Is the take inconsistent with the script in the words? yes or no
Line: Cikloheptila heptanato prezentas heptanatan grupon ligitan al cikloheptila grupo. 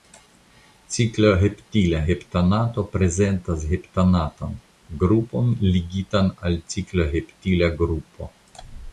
no